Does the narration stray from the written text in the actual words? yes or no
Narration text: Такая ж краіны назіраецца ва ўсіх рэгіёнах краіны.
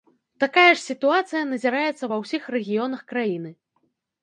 yes